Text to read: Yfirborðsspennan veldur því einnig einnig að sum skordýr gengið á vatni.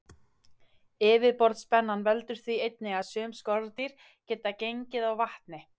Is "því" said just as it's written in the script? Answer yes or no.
yes